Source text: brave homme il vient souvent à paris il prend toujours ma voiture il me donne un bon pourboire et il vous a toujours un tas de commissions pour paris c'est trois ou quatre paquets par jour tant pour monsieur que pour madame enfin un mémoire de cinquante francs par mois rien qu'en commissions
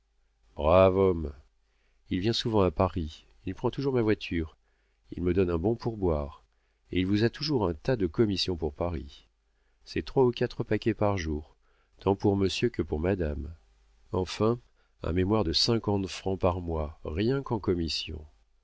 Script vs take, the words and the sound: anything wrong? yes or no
no